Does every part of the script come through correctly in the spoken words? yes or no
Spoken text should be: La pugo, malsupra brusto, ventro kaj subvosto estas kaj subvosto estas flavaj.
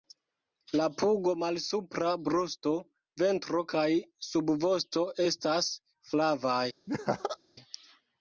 no